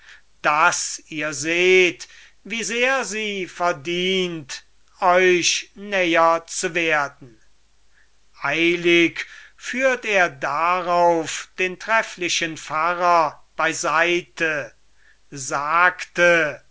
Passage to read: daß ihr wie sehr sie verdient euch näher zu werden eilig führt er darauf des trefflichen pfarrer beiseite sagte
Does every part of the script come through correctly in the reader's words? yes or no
no